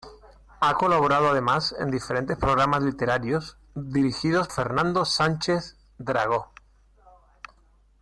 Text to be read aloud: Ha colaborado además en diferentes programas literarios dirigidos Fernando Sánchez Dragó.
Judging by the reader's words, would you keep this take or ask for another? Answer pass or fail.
pass